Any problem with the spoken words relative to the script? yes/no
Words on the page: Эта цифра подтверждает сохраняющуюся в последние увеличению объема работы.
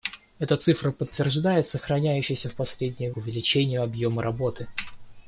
no